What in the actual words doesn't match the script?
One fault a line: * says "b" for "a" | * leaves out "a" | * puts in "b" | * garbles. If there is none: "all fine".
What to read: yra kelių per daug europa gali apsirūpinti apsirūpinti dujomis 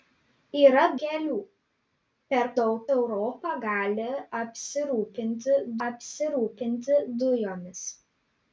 all fine